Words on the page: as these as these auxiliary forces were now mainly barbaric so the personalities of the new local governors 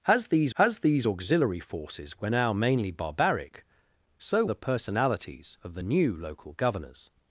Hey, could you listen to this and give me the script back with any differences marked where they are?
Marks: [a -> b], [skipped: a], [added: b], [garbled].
as these as these auxiliary forces were now mainly barbaric so the personalities of the new local governors